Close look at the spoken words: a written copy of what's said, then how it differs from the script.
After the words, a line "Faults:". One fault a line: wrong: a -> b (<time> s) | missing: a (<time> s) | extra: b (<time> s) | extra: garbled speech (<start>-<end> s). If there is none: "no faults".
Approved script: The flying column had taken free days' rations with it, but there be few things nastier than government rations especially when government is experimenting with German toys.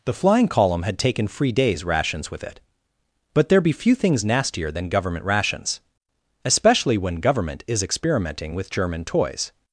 The flying column had taken free days' rations with it, but there be few things nastier than government rations especially when government is experimenting with German toys.
Faults:
no faults